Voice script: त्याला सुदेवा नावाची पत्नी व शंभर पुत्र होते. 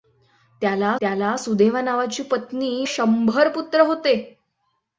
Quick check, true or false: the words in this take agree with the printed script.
false